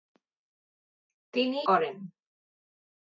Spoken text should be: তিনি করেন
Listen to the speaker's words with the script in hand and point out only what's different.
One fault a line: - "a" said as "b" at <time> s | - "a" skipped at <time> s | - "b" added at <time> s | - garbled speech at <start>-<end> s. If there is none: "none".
none